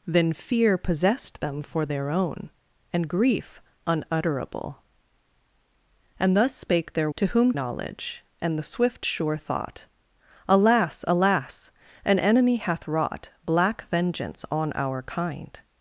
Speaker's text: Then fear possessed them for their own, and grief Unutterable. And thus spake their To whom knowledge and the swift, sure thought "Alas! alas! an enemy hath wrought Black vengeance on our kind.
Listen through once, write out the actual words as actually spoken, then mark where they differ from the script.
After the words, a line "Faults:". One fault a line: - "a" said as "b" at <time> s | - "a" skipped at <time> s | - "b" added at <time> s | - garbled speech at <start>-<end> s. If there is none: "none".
Then fear possessed them for their own, and grief Unutterable. And thus spake their To whom knowledge and the swift, sure thought "Alas! alas! an enemy hath wrought Black vengeance on our kind.
Faults:
none